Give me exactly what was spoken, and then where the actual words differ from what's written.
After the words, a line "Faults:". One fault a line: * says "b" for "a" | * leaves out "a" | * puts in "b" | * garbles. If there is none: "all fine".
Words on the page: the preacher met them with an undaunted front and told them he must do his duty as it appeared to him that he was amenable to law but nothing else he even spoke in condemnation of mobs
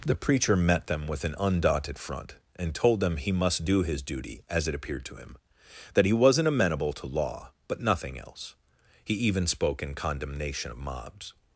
the preacher met them with an undaunted front and told them he must do his duty as it appeared to him that he wasn't amenable to law but nothing else he even spoke in condemnation of mobs
Faults:
* says "wasn't" for "was"